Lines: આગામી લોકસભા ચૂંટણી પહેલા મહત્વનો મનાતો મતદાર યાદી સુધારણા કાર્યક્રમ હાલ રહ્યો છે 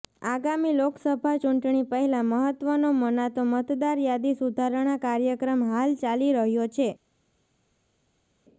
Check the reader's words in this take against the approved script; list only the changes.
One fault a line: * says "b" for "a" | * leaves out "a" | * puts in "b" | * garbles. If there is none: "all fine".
* puts in "ચાલી"